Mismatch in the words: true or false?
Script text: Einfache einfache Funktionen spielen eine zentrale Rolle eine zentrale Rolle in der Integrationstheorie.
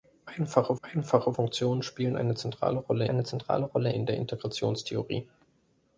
false